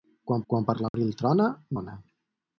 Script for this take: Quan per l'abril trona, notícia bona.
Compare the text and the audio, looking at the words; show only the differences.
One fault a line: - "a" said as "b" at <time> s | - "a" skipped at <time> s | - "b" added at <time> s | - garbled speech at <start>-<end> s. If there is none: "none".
- "quan" added at 0.5 s
- "notícia" skipped at 1.5 s